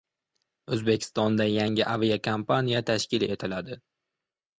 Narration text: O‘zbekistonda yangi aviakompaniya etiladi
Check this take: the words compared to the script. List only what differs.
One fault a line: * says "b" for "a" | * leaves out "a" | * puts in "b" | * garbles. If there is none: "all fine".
* puts in "tashkil"